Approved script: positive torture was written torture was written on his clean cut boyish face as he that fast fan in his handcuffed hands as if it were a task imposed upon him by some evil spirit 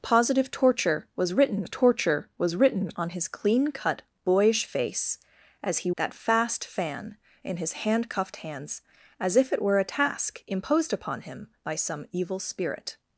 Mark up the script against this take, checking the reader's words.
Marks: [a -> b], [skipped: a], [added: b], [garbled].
positive torture was written torture was written on his clean cut boyish face as he that fast fan in his handcuffed hands as if it were a task imposed upon him by some evil spirit